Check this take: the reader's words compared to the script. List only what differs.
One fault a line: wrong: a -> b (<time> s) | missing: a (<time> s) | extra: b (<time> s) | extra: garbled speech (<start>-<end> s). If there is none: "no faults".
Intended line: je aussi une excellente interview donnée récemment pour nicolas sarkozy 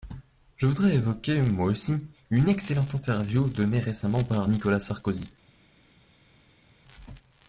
extra: voudrais évoquer moi (0.7 s)
wrong: pour -> par (4.2 s)